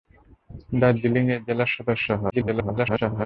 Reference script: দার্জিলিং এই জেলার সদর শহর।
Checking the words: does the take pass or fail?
fail